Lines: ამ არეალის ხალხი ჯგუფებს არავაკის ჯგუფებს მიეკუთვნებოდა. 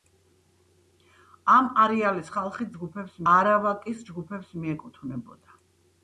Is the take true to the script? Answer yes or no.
yes